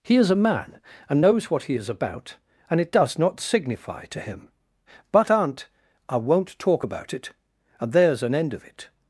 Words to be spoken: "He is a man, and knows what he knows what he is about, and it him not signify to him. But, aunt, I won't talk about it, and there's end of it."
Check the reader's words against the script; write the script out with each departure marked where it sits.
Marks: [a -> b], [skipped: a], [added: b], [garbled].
"He is a man, and knows what he [skipped: knows what he] is about, and it [him -> does] not signify to him. But, aunt, I won't talk about it, and there's [added: an] end of it."